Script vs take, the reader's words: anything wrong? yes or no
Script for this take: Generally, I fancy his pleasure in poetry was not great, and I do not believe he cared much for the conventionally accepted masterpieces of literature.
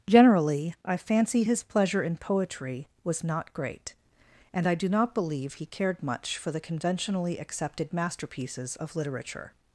no